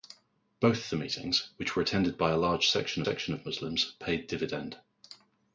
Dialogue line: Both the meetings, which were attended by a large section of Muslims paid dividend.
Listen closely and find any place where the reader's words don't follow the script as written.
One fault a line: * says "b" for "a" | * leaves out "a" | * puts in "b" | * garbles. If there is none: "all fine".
* puts in "section"